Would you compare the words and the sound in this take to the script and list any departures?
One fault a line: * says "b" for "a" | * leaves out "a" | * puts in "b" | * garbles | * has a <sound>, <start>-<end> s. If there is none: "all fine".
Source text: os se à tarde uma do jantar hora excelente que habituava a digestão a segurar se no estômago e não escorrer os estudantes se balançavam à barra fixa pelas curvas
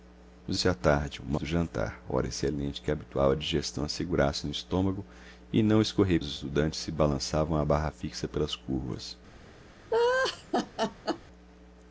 * has a laugh, 9.9-11.2 s